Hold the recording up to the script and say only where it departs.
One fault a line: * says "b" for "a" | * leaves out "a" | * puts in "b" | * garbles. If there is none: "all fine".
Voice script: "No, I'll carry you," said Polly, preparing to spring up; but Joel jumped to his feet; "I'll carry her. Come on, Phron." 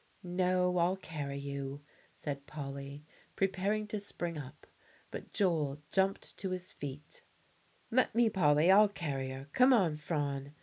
* puts in "Let me Polly"